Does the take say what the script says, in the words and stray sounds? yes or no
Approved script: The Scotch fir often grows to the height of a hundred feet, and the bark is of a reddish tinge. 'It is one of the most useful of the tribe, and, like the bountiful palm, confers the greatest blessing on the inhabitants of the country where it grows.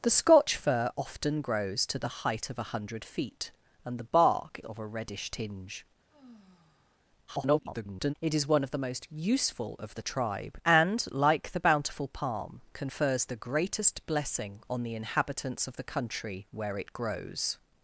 no